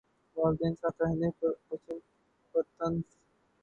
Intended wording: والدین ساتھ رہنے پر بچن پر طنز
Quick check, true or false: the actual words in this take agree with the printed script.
true